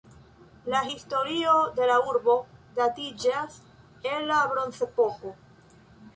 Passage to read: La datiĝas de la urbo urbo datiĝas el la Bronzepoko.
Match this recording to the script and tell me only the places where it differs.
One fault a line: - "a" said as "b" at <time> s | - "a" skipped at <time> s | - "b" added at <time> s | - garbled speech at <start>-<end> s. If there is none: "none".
- "datiĝas" said as "historio" at 0.9 s
- "urbo" skipped at 2.4 s